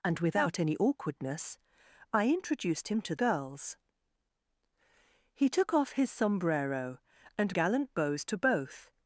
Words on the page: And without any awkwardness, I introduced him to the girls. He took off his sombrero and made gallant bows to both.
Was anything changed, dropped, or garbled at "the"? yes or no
yes